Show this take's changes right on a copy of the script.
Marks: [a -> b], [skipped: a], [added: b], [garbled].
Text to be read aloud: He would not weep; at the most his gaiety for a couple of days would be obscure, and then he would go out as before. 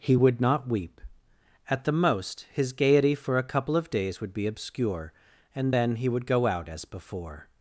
He would not weep; at the most his gaiety for a couple of days would be obscure, and then he would go out as before.